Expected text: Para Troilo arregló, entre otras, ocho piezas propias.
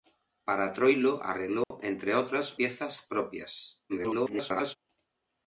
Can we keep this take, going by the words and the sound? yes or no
no